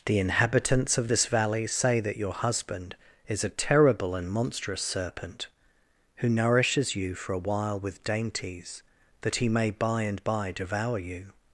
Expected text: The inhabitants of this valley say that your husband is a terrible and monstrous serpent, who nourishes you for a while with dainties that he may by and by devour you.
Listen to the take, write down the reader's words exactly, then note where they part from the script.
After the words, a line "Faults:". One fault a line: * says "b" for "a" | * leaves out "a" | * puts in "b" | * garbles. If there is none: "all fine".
The inhabitants of this valley say that your husband is a terrible and monstrous serpent, who nourishes you for a while with dainties that he may by and by devour you.
Faults:
all fine